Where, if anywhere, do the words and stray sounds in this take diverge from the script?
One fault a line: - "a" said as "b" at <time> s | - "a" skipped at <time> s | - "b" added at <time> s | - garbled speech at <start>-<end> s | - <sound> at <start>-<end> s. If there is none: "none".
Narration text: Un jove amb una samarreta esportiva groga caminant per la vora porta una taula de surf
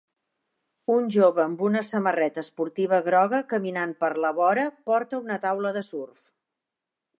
none